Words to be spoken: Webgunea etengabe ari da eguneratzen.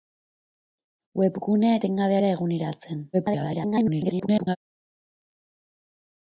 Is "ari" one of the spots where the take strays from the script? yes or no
yes